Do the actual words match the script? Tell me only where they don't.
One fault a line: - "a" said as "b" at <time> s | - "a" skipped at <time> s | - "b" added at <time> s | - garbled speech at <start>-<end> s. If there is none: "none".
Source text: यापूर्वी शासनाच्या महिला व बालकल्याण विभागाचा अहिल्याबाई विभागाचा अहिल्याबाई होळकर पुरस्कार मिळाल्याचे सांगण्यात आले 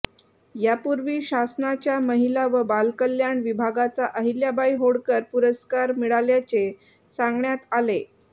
- "विभागाचा अहिल्याबाई" skipped at 4.8 s